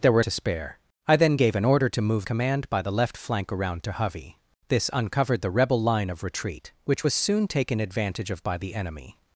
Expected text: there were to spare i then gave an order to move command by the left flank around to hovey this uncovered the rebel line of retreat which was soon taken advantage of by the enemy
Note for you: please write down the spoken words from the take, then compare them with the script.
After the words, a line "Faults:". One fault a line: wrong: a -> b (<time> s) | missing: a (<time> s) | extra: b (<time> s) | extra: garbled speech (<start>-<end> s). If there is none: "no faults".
there were to spare i then gave an order to move command by the left flank around to hovey this uncovered the rebel line of retreat which was soon taken advantage of by the enemy
Faults:
no faults